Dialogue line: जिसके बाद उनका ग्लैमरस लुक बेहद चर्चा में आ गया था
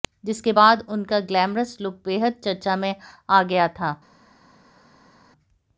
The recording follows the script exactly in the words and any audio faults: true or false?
true